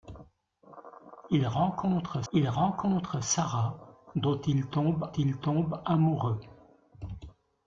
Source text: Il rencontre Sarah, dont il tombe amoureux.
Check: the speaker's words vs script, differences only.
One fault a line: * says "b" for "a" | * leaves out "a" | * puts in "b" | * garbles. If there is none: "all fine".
* puts in "il rencontre"
* puts in "il tombe"